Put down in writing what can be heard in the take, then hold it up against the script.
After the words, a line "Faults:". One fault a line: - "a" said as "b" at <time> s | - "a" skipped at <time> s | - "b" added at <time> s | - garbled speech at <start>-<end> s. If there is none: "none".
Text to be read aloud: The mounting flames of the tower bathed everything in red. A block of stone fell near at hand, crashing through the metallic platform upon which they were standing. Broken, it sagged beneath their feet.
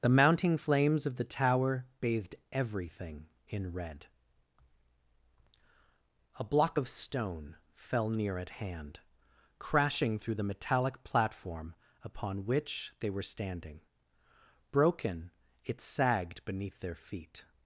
The mounting flames of the tower bathed everything in red. A block of stone fell near at hand, crashing through the metallic platform upon which they were standing. Broken, it sagged beneath their feet.
Faults:
none